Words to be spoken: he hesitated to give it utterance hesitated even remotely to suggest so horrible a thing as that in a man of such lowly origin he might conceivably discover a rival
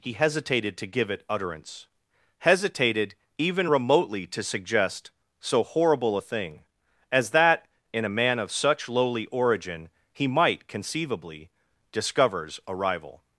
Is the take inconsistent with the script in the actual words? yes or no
yes